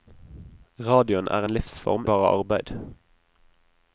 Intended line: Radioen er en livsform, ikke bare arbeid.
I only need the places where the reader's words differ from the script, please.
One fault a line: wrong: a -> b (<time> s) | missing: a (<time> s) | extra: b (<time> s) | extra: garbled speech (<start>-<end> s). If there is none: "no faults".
missing: ikke (2.1 s)